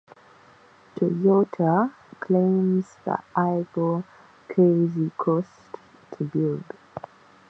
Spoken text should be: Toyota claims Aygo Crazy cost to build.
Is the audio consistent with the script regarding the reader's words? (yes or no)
no